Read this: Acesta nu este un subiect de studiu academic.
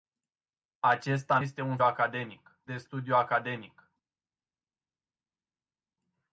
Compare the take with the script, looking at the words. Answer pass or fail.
fail